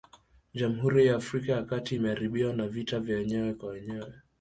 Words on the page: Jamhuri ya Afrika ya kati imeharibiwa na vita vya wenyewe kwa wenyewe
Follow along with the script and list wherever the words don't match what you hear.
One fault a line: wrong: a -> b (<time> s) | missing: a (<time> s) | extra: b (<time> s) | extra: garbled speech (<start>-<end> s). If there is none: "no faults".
no faults